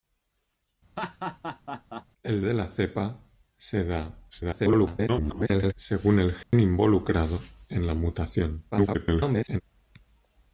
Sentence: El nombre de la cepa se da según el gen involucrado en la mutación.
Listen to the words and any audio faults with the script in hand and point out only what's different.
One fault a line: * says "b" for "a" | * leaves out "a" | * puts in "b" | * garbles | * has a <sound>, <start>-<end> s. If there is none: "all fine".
* has a laugh, 1.0-2.1 s
* leaves out "nombre"
* garbles
* has a dropout, 6.4-6.5 s
* garbles